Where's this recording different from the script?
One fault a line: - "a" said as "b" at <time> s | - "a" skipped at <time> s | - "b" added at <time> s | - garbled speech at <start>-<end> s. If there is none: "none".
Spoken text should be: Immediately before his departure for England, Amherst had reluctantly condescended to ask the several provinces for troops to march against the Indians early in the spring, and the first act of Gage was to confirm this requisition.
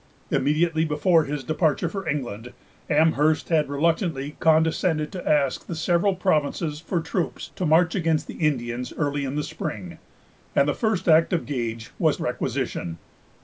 - "to confirm this" skipped at 12.2 s